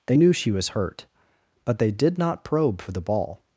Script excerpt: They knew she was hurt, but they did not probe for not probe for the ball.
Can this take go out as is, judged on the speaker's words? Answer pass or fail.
fail